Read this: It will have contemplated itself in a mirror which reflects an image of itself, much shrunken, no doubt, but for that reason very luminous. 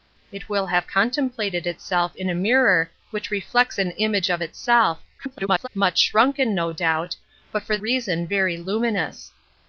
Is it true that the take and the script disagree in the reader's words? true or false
true